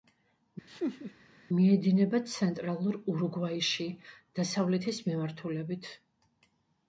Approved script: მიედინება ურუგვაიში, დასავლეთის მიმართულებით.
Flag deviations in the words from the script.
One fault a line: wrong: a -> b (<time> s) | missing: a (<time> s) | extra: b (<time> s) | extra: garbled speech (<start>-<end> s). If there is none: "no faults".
extra: ცენტრალურ (2.3 s)